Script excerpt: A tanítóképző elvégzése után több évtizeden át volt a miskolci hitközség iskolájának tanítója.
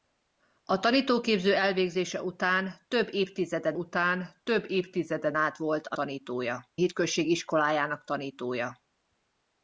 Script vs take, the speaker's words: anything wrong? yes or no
yes